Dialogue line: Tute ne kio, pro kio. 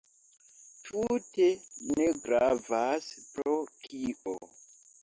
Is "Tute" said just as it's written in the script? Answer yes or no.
yes